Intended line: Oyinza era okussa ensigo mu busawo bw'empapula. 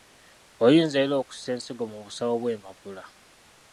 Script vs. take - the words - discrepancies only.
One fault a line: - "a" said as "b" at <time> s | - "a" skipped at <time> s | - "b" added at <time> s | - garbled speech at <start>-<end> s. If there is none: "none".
none